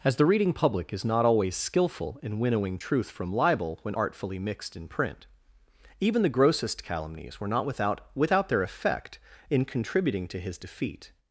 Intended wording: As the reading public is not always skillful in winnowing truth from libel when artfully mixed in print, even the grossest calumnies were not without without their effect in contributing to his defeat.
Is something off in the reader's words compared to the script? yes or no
no